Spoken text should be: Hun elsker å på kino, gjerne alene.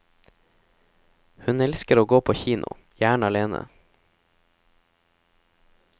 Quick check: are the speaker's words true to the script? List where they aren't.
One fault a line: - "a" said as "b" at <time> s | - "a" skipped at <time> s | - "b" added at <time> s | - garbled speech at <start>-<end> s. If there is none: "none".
- "gå" added at 2.0 s